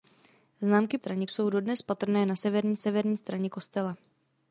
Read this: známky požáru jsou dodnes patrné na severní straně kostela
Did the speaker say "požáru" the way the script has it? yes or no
no